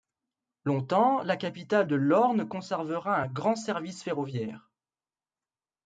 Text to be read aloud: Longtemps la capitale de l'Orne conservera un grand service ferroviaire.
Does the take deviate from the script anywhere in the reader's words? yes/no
no